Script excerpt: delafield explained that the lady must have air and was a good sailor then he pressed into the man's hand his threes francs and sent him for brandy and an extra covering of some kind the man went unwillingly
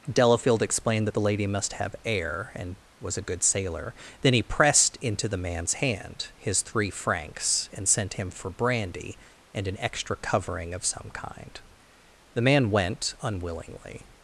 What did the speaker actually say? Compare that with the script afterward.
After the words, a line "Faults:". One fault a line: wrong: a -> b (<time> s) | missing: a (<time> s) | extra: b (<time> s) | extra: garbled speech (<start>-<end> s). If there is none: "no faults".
delafield explained that the lady must have air and was a good sailor then he pressed into the man's hand his three francs and sent him for brandy and an extra covering of some kind the man went unwillingly
Faults:
wrong: threes -> three (6.6 s)